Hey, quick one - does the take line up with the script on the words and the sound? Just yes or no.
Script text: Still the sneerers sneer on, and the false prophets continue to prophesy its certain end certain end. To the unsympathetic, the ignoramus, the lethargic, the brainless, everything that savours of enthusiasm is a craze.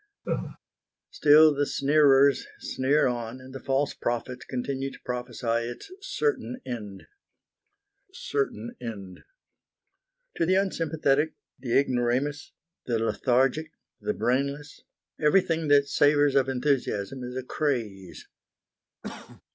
no